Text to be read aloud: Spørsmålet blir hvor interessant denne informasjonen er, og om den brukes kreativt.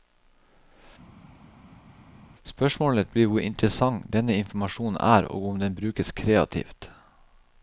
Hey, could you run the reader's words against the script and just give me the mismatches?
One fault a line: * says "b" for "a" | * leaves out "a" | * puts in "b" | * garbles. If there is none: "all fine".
all fine